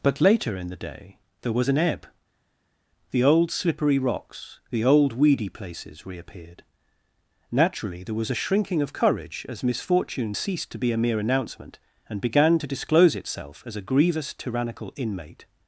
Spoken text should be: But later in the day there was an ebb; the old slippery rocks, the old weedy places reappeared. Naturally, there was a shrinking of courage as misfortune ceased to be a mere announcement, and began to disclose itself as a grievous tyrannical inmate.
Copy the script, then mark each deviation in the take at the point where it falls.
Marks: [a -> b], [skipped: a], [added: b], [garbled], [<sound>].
But later in the day there was an ebb; the old slippery rocks, the old weedy places reappeared. Naturally, there was a shrinking of courage as misfortune ceased to be a mere announcement, and began to disclose itself as a grievous tyrannical inmate.